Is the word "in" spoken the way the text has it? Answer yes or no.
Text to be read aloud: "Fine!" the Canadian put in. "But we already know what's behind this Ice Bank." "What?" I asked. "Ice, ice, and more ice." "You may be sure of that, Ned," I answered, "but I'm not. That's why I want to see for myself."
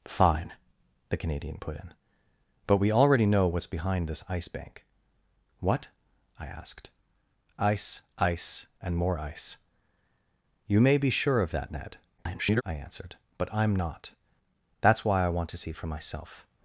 yes